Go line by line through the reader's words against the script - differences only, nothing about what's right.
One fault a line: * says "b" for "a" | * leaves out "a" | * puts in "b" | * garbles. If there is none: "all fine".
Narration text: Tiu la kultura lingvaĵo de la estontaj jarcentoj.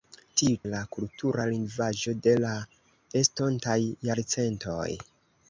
all fine